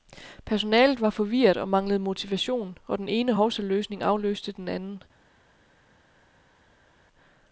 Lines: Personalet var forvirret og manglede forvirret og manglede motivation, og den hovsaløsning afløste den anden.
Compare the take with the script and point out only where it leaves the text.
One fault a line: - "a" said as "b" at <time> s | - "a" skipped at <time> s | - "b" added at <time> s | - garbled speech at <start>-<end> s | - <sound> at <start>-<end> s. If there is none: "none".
- "forvirret og manglede" skipped at 2.0 s
- "ene" added at 3.1 s